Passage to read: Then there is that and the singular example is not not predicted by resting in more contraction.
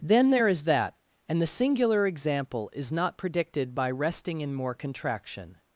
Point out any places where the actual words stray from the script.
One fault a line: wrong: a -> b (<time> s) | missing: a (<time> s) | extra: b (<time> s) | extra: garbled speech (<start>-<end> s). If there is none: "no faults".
missing: not (3.2 s)